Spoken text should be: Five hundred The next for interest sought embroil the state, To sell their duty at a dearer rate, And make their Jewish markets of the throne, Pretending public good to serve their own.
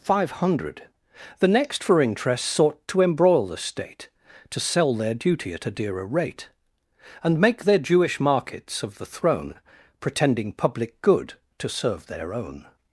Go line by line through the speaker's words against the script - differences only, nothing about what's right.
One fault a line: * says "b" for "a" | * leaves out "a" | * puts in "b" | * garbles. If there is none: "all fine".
* puts in "to"